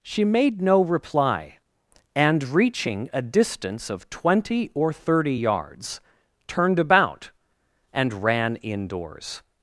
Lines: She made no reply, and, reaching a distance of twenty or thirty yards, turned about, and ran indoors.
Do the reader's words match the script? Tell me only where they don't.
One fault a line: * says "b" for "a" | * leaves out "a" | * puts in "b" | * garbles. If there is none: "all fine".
all fine